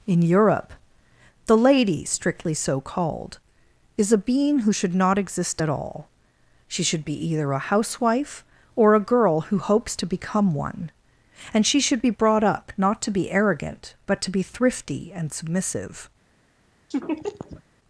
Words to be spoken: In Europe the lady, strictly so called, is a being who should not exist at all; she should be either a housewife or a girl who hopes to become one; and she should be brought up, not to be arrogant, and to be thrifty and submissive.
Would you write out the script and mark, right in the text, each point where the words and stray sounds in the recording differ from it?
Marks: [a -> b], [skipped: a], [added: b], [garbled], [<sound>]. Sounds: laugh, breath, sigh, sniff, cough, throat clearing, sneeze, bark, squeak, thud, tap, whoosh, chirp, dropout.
In Europe the lady, strictly so called, is a being who should not exist at all; she should be either a housewife or a girl who hopes to become one; and she should be brought up, not to be arrogant, [and -> but] to be thrifty and submissive. [laugh]